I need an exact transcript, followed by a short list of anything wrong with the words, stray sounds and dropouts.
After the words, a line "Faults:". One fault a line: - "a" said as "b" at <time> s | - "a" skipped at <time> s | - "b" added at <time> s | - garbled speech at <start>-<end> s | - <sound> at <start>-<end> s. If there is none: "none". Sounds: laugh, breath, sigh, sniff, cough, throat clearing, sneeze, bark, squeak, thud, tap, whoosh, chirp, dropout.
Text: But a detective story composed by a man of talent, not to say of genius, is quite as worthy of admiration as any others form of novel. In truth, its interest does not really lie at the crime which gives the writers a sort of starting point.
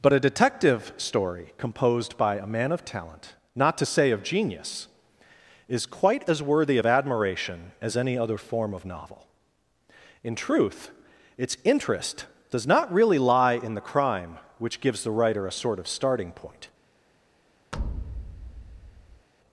But a detective story composed by a man of talent, not to say of genius, is quite as worthy of admiration as any other form of novel. In truth, its interest does not really lie in the crime which gives the writer a sort of starting point.
Faults:
- "others" said as "other" at 8.2 s
- "at" said as "in" at 13.5 s
- "writers" said as "writer" at 15.1 s
- thud at 17.7-19.3 s